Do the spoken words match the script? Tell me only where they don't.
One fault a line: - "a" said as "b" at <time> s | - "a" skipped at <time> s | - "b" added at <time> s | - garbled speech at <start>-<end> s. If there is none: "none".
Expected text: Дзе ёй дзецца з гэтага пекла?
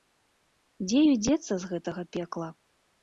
none